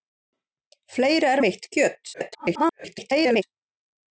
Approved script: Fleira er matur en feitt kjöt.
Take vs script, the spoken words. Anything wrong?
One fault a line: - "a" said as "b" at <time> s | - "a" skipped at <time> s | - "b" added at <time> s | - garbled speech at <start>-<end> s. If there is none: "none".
- "matur en" skipped at 1.4 s
- garbled speech at 2.1-3.4 s